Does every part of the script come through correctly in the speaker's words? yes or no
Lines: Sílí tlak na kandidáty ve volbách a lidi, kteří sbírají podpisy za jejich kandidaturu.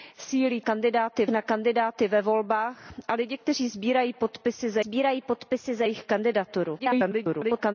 no